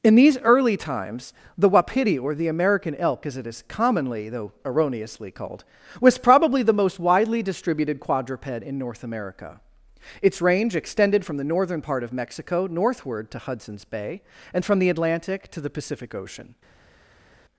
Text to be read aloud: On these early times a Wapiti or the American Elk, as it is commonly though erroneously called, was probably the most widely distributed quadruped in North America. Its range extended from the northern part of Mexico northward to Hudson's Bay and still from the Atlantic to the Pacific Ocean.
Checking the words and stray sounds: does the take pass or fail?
fail